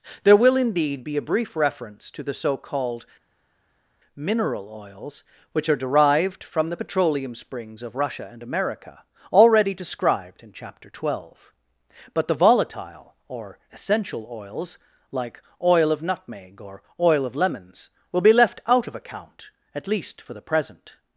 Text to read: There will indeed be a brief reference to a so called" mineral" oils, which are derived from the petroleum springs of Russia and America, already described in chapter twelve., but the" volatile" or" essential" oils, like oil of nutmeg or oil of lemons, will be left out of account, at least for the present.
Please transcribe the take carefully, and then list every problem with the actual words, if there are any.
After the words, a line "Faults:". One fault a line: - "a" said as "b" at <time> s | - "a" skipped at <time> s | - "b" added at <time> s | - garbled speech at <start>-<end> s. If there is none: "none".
There will indeed be a brief reference to the so called" mineral" oils, which are derived from the petroleum springs of Russia and America, already described in chapter twelve., but the" volatile" or" essential" oils, like oil of nutmeg or oil of lemons, will be left out of account, at least for the present.
Faults:
- "a" said as "the" at 2.2 s